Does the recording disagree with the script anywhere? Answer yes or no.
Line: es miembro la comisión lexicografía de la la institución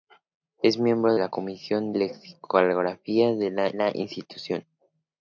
no